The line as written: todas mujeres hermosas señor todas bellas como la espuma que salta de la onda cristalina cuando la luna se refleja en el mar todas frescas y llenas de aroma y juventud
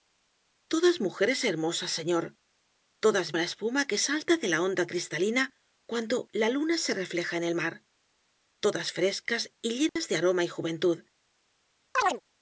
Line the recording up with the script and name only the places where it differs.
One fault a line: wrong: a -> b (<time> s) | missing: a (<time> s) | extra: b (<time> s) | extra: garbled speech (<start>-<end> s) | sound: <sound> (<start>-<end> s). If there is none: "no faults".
missing: bellas como (3.3 s)
sound: dropout (9.9-10.0 s)
sound: chirp (11.9-12.2 s)